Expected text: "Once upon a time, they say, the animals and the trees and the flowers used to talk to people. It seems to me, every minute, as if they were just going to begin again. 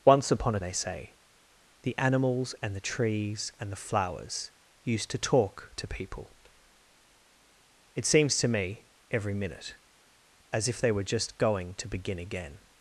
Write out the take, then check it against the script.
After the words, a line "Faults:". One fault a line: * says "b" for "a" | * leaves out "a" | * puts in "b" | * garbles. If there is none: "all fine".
"Once upon a they say, the animals and the trees and the flowers used to talk to people. It seems to me, every minute, as if they were just going to begin again.
Faults:
* leaves out "time"